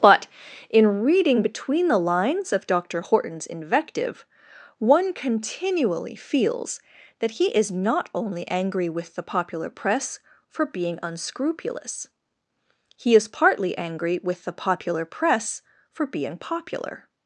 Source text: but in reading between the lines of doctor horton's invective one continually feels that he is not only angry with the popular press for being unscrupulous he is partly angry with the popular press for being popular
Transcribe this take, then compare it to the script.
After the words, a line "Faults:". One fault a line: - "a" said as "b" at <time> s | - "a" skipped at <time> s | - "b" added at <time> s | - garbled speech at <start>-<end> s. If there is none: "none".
but in reading between the lines of doctor horton's invective one continually feels that he is not only angry with the popular press for being unscrupulous he is partly angry with the popular press for being popular
Faults:
none